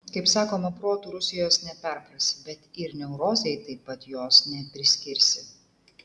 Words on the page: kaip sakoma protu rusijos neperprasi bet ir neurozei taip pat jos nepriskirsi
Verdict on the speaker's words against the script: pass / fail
pass